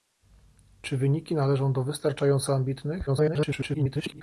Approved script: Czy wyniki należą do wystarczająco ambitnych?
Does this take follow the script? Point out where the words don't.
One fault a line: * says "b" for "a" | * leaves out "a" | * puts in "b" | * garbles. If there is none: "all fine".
* garbles